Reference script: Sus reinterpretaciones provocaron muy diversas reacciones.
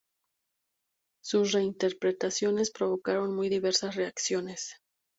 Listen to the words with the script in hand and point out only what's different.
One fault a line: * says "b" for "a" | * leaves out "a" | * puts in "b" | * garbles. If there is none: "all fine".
all fine